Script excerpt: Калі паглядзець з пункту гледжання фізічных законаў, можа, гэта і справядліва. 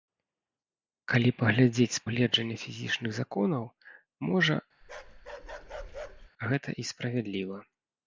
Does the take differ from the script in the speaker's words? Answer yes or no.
yes